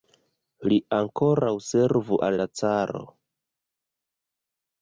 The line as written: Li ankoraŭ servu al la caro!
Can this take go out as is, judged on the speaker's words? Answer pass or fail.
pass